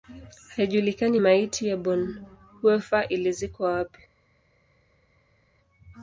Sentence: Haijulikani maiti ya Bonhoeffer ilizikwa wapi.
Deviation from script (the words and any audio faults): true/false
false